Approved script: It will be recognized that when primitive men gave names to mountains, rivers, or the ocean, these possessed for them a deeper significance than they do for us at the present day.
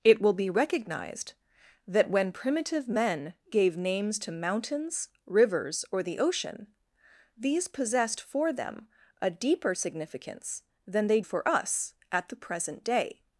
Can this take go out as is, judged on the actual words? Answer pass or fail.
fail